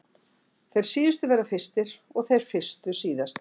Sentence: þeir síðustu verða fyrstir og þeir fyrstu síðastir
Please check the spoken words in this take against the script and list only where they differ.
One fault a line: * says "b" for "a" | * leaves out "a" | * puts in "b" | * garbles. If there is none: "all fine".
all fine